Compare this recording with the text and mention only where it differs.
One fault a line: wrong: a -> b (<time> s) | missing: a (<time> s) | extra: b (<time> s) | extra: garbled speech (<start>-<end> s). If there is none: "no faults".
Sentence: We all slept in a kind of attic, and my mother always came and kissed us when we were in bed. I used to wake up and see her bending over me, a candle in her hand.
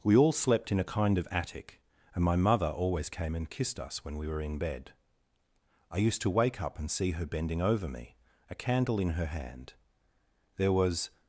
extra: There was (10.6 s)